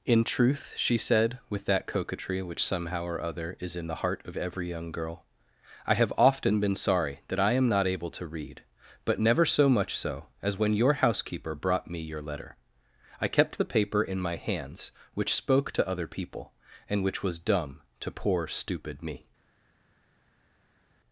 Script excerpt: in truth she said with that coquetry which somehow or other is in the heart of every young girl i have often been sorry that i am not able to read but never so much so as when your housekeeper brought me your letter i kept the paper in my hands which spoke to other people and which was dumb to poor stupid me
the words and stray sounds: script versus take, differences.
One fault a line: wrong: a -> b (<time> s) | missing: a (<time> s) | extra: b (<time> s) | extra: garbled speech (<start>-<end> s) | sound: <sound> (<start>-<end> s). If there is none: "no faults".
no faults